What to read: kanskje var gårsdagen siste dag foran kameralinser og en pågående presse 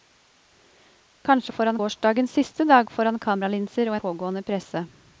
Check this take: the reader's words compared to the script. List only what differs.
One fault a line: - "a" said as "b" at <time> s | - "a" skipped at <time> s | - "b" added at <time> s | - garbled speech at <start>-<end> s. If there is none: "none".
- "var" said as "foran" at 1.5 s
- "en" skipped at 4.0 s